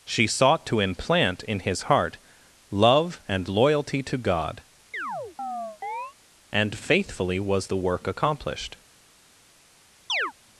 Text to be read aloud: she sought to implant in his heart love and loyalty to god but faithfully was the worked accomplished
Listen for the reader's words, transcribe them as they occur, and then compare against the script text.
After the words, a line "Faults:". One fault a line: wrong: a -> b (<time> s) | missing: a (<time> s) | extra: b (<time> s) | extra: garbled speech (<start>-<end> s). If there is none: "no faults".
she sought to implant in his heart love and loyalty to god and faithfully was the work accomplished
Faults:
wrong: but -> and (6.5 s)
wrong: worked -> work (7.8 s)